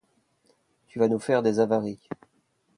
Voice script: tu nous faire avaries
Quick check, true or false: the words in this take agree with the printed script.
false